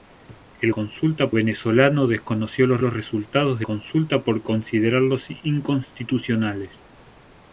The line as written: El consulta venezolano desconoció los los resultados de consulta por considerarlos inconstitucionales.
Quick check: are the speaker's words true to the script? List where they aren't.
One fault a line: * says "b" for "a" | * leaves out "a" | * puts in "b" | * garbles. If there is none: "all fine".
all fine